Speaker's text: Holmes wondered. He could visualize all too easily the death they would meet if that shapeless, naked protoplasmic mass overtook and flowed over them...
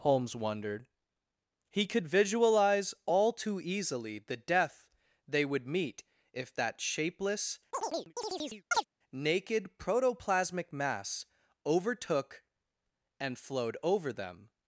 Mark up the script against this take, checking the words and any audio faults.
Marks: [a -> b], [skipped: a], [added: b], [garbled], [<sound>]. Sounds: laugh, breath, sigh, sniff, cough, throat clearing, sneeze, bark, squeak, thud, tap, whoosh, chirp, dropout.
Holmes wondered. He could visualize all too easily the death they would meet if that shapeless, [chirp] naked protoplasmic mass overtook and flowed over them...